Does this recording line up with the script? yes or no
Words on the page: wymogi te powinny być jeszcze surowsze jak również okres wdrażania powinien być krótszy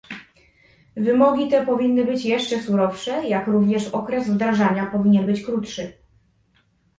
yes